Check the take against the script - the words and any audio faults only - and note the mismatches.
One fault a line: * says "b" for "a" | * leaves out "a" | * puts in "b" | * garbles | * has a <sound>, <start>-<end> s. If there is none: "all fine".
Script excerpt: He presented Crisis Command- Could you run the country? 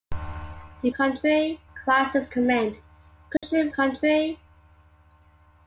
* says "country" for "presented"
* has a dropout, 3.4-3.4 s
* leaves out "run the"